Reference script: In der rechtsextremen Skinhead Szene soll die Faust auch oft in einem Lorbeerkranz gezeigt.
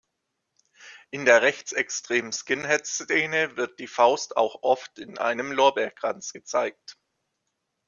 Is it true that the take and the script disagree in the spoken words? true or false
true